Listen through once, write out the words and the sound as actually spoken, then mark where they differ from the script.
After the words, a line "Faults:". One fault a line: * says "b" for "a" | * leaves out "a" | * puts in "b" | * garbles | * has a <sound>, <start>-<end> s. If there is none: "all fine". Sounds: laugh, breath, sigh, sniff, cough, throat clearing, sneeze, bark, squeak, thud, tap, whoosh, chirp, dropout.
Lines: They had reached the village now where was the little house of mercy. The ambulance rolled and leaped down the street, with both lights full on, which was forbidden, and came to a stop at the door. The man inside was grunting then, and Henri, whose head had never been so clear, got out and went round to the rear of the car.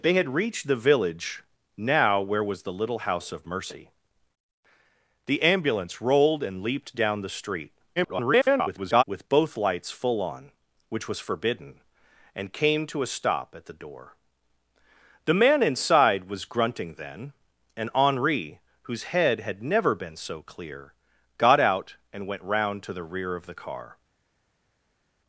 They had reached the village now where was the little house of mercy. The ambulance rolled and leaped down the street, [garbled] with both lights full on, which was forbidden, and came to a stop at the door. The man inside was grunting then, and Henri, whose head had never been so clear, got out and went round to the rear of the car.
Faults:
* garbles